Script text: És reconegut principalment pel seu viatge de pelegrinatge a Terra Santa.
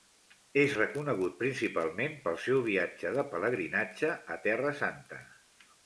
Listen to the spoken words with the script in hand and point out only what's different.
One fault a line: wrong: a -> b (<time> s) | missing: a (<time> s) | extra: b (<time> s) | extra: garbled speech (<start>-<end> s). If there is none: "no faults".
no faults